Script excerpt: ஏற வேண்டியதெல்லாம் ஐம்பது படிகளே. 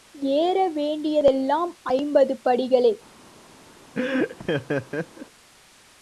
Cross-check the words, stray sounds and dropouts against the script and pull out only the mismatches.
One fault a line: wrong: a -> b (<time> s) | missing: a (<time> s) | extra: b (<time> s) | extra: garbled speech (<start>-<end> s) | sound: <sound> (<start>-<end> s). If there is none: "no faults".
sound: laugh (3.9-5.3 s)